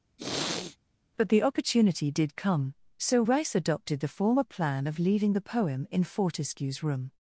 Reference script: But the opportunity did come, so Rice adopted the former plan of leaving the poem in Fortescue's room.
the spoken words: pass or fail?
pass